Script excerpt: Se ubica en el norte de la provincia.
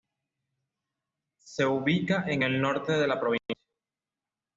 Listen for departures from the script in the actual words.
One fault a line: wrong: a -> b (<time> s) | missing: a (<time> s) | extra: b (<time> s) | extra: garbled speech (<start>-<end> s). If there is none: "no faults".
no faults